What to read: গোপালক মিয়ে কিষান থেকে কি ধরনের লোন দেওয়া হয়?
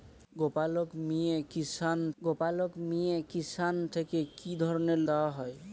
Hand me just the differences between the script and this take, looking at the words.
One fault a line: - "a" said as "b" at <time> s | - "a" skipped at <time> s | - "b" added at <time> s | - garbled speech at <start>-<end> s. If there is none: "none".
- "গোপালক মিয়ে কিষান" added at 2.2 s
- "লোন" skipped at 5.0 s